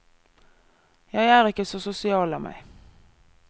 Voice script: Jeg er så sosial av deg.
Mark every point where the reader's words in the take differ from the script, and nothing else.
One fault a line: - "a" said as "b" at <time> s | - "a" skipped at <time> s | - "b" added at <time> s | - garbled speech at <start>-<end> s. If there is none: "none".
- "ikke" added at 1.5 s
- "deg" said as "meg" at 2.4 s